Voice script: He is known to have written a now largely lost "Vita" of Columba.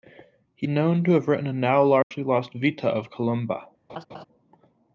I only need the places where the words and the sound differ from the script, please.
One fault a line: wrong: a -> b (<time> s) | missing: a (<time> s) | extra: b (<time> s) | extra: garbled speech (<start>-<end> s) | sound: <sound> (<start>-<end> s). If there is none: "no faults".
missing: is (0.7 s)
sound: dropout (2.0-2.1 s)
sound: laugh (3.9-4.2 s)